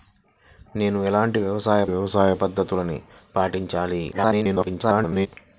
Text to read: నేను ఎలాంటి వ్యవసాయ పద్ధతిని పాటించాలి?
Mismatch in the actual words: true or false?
true